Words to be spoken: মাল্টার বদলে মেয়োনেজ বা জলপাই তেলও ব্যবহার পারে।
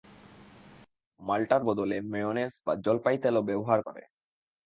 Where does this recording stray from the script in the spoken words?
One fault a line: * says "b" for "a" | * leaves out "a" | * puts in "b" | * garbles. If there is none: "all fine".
all fine